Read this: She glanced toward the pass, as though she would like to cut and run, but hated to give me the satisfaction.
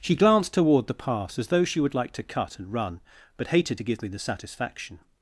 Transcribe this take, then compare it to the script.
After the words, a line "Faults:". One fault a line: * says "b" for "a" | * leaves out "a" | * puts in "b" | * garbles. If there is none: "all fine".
She glanced toward the pass, as though she would like to cut and run, but hated to give me the satisfaction.
Faults:
all fine